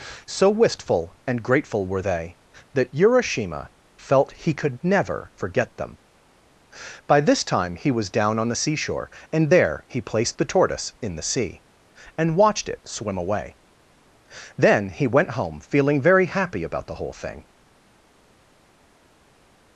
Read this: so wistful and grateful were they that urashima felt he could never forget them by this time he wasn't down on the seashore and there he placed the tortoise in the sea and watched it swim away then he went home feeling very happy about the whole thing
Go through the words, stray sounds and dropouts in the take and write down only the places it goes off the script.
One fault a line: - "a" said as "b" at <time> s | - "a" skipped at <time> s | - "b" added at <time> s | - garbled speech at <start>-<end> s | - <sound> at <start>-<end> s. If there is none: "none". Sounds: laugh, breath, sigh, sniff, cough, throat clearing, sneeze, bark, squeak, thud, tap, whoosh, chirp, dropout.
- "wasn't" said as "was" at 7.9 s